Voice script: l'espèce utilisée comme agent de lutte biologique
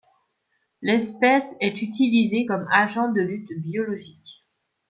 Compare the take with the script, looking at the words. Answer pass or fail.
fail